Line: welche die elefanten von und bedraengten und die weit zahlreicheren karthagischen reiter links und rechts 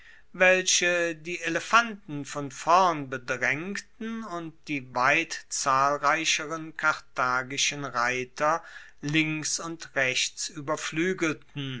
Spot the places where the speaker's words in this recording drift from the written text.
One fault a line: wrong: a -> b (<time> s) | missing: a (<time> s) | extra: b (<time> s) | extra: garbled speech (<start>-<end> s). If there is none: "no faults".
wrong: und -> vorn (2.5 s)